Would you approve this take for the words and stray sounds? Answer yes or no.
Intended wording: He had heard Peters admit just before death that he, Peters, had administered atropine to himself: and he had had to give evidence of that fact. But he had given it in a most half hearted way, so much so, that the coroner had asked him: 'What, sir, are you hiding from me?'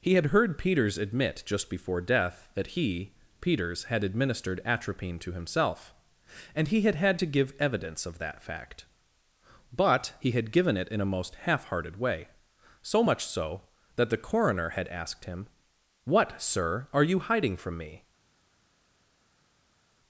yes